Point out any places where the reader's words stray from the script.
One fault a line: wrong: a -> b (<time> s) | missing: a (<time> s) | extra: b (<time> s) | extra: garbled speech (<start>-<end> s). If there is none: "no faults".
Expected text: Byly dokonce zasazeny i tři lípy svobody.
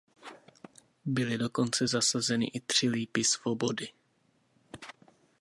no faults